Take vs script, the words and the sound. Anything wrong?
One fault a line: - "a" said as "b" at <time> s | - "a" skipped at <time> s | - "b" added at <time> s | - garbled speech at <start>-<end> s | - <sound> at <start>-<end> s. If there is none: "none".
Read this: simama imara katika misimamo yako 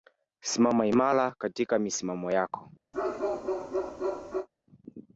- bark at 2.9-4.5 s